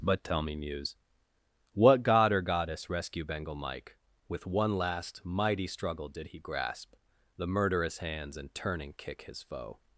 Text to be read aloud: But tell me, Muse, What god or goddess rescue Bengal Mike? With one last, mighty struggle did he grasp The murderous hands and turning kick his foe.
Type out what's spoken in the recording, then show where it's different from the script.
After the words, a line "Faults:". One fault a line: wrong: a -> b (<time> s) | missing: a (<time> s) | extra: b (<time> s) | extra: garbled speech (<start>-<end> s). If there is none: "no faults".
But tell me, Muse, What god or goddess rescue Bengal Mike? With one last, mighty struggle did he grasp The murderous hands and turning kick his foe.
Faults:
no faults